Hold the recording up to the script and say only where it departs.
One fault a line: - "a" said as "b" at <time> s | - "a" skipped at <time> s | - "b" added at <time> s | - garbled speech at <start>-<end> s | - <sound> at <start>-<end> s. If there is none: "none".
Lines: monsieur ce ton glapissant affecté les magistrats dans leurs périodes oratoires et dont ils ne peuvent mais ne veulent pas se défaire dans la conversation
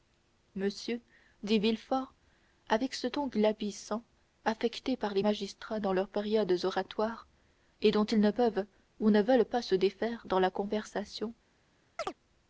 - "dit villefort avec" added at 1.4 s
- "par" added at 5.0 s
- "mais" said as "ou" at 9.0 s
- chirp at 12.0-12.1 s